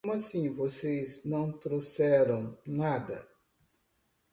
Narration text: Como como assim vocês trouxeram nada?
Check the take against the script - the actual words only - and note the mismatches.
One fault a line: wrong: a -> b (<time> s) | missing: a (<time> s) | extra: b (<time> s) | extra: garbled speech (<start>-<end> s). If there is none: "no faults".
missing: como (0.1 s)
extra: não (1.2 s)